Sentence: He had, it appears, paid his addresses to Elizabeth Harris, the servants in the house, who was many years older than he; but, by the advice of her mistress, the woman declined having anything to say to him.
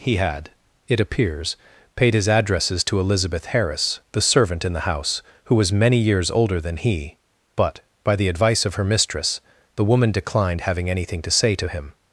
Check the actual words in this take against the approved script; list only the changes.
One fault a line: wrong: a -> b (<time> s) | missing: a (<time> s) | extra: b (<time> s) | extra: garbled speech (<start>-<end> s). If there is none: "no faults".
wrong: servants -> servant (4.2 s)